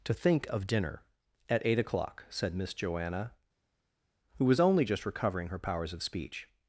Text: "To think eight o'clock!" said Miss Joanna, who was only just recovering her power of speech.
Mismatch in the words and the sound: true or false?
true